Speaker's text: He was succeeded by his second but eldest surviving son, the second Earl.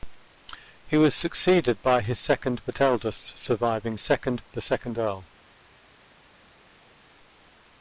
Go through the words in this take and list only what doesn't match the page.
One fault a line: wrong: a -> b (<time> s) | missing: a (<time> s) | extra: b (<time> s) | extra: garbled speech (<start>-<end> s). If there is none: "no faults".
wrong: son -> second (4.0 s)